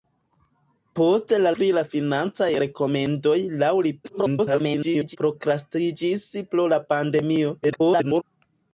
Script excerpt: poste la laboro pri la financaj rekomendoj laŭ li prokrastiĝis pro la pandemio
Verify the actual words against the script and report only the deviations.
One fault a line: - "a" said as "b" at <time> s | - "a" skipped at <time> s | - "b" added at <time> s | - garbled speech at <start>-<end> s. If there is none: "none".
- "laboro" skipped at 1.5 s
- garbled speech at 4.0-5.2 s
- garbled speech at 7.6-8.2 s